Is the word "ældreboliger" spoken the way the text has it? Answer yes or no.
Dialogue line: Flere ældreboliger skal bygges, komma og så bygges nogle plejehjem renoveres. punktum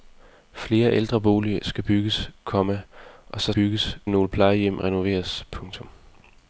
yes